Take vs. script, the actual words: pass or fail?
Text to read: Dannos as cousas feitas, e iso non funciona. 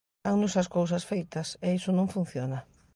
pass